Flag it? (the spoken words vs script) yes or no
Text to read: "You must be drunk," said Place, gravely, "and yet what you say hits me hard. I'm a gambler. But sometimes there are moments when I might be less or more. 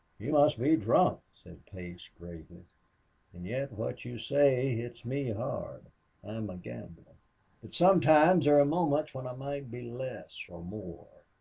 no